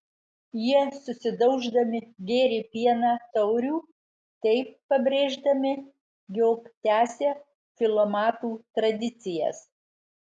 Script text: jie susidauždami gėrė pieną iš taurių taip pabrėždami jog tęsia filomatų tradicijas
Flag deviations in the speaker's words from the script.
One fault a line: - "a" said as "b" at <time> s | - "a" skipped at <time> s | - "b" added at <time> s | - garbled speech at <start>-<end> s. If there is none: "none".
- "iš" skipped at 3.1 s